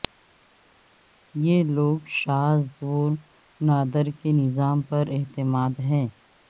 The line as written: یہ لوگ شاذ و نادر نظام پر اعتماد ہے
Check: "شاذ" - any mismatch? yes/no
no